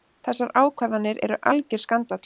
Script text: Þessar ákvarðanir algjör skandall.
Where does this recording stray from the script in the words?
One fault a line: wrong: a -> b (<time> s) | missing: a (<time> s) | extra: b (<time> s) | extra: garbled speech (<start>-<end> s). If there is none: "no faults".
extra: eru (1.3 s)